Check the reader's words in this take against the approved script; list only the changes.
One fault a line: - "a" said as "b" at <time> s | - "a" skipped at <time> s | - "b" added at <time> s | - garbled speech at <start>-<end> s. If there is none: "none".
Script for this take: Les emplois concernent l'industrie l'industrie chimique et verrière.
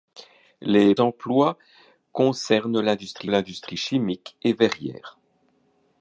none